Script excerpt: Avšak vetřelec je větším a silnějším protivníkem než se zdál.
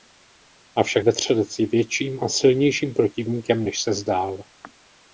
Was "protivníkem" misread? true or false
false